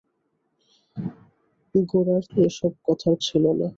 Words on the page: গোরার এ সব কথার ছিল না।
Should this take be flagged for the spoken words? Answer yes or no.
no